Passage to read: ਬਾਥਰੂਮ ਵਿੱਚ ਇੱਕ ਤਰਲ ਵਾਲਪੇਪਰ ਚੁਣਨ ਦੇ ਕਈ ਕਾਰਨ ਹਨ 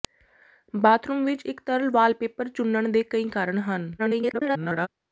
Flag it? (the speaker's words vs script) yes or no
yes